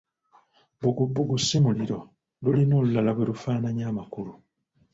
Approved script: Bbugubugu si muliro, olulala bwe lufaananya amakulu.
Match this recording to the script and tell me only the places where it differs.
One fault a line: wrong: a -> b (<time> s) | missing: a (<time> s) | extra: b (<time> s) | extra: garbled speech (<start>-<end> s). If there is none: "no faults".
extra: lulina (2.4 s)